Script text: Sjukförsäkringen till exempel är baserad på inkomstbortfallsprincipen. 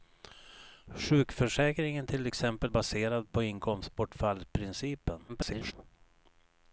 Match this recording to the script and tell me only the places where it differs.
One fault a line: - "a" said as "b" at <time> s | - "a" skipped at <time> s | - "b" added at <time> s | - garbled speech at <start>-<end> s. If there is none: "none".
- "är" skipped at 2.7 s
- garbled speech at 5.3-5.7 s